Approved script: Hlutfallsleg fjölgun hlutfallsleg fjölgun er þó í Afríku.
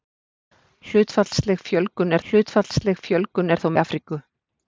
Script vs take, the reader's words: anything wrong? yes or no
no